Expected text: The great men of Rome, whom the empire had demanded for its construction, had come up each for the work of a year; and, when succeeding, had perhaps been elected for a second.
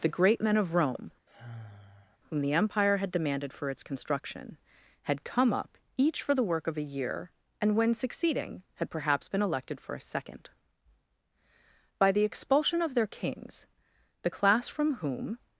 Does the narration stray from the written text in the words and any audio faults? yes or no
yes